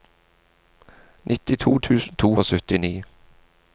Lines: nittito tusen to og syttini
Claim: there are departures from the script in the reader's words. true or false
false